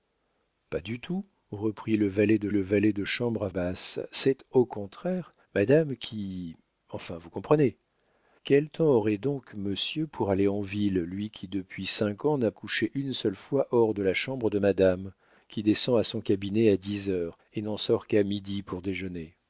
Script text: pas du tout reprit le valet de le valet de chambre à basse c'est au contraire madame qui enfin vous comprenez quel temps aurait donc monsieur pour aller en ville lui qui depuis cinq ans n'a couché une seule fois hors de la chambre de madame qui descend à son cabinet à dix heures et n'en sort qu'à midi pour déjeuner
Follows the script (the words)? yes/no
yes